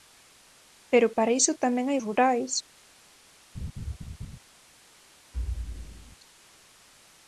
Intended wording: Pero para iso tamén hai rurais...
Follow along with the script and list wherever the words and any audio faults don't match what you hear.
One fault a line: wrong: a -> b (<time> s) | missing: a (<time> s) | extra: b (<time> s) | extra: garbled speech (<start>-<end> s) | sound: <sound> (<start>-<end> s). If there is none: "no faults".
sound: laugh (3.5-4.4 s)
sound: thud (5.3-6.2 s)